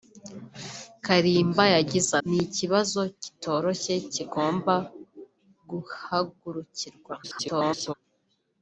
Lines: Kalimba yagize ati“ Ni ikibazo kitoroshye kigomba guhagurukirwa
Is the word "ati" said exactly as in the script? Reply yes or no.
no